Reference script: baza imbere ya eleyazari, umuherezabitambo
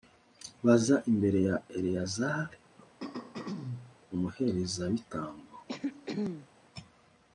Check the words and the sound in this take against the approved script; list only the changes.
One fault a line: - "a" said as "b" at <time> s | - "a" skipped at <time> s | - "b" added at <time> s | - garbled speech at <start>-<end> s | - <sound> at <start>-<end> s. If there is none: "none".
- throat clearing at 2.8-4.0 s
- throat clearing at 5.7-6.5 s